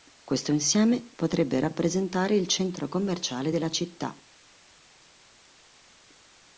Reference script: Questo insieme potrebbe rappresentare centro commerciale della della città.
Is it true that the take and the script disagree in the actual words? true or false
true